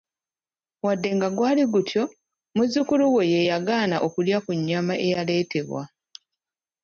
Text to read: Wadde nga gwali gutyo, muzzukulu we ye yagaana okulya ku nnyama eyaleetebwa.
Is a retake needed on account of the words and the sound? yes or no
no